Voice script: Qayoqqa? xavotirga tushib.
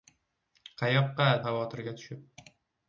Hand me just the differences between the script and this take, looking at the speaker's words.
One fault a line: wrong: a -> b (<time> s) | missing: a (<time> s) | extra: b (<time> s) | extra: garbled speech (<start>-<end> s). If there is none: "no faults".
no faults